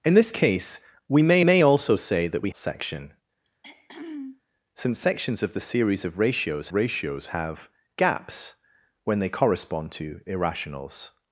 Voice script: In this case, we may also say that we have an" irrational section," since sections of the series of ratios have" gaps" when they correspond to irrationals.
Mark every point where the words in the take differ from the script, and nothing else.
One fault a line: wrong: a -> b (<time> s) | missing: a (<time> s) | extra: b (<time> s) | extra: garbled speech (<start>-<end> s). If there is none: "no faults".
extra: may (1.4 s)
missing: have an irrational (2.5 s)
extra: ratios (6.7 s)